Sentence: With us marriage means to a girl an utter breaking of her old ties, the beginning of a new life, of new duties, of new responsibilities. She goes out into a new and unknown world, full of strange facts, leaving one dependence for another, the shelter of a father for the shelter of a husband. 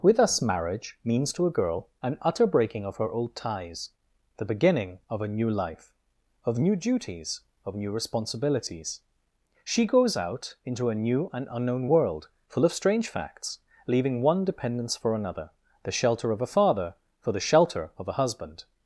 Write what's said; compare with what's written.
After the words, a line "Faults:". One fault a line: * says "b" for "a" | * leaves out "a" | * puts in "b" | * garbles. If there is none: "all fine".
With us marriage means to a girl an utter breaking of her old ties, the beginning of a new life, of new duties, of new responsibilities. She goes out into a new and unknown world, full of strange facts, leaving one dependence for another, the shelter of a father for the shelter of a husband.
Faults:
all fine